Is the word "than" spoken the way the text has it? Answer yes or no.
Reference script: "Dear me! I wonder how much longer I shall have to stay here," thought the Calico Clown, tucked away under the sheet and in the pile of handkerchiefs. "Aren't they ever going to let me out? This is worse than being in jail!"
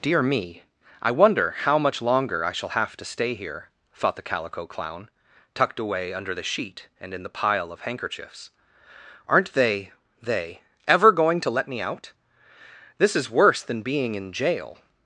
yes